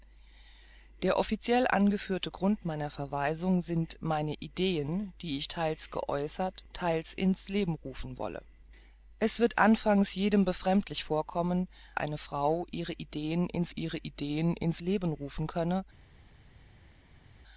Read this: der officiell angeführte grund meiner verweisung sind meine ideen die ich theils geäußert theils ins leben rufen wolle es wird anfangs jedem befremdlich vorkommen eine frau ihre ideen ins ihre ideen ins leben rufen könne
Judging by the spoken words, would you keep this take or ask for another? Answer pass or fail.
pass